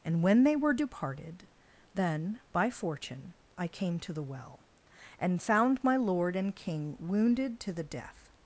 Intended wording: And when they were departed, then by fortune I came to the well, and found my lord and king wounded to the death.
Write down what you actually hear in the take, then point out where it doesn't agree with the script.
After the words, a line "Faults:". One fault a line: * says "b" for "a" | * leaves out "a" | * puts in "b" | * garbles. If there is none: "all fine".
And when they were departed, then by fortune I came to the well, and found my lord and king wounded to the death.
Faults:
all fine